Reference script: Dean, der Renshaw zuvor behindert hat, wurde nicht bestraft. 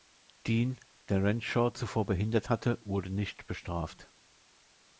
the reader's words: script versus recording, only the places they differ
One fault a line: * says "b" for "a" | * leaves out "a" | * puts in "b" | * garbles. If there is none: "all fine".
* says "hatte" for "hat"